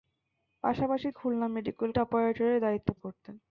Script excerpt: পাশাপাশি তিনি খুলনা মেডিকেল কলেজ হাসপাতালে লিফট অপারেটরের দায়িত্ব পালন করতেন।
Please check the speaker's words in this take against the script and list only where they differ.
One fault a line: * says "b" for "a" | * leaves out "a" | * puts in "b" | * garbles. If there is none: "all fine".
* leaves out "তিনি"
* leaves out "কলেজ হাসপাতালে লিফট"
* leaves out "পালন"